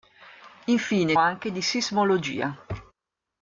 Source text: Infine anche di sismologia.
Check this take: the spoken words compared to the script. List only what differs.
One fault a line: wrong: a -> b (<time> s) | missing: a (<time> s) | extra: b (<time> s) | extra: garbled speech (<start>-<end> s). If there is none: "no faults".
no faults